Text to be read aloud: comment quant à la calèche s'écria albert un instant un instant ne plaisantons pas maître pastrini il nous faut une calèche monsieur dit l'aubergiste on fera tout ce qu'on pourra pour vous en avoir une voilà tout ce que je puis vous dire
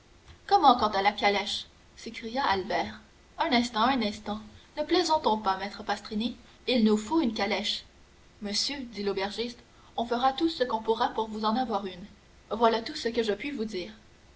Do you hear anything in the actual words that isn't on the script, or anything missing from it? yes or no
no